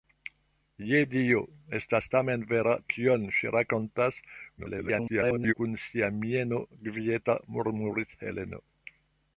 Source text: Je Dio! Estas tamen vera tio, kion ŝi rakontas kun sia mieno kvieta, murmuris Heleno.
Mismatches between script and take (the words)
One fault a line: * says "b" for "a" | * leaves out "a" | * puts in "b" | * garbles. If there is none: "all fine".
* leaves out "tio"
* garbles